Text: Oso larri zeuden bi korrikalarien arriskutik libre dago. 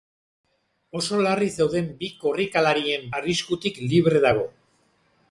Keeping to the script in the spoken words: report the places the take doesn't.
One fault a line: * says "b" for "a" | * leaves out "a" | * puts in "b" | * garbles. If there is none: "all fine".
all fine